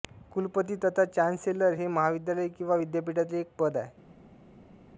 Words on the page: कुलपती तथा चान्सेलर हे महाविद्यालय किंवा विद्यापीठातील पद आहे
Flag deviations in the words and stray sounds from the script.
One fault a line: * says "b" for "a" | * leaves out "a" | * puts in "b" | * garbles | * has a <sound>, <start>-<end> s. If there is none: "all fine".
* puts in "एक"